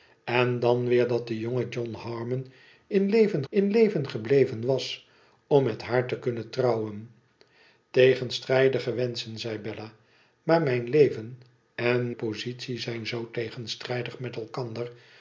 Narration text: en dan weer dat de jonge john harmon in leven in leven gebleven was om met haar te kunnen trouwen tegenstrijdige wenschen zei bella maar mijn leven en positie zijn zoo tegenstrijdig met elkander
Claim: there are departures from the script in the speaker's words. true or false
false